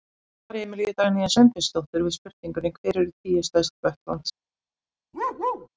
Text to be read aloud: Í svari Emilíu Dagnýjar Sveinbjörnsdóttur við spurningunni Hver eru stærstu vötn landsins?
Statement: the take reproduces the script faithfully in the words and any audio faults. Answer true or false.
false